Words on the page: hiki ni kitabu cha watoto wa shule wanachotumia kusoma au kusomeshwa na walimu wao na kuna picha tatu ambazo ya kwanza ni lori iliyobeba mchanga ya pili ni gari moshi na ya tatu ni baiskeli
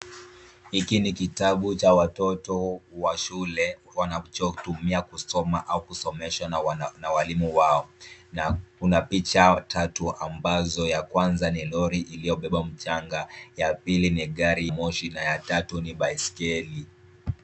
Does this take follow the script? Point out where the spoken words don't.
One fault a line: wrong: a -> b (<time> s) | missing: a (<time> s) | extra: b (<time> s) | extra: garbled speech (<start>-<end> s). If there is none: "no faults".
no faults